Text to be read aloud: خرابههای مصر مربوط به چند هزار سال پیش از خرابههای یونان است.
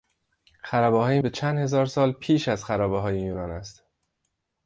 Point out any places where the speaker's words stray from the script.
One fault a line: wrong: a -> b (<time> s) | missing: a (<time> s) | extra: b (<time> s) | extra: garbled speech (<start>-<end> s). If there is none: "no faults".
missing: مصر مربوط (1.2 s)